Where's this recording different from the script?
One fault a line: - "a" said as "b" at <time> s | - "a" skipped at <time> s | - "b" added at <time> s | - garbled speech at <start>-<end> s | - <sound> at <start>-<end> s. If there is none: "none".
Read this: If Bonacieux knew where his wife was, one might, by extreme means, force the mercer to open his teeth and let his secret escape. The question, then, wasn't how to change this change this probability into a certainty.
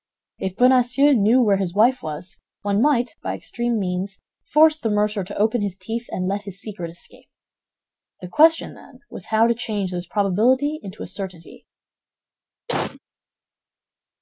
- "wasn't" said as "was" at 9.1 s
- "change this" skipped at 10.1 s
- cough at 12.7-13.0 s